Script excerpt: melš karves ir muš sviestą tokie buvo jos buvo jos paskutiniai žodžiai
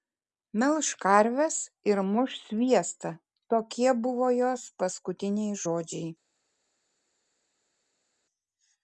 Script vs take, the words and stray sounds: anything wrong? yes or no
yes